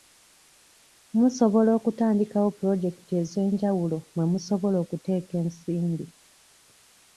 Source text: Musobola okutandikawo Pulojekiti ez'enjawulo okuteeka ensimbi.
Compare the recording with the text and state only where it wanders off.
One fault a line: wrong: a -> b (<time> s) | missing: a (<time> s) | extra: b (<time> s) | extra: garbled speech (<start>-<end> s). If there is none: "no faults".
extra: mwe musobola (4.1 s)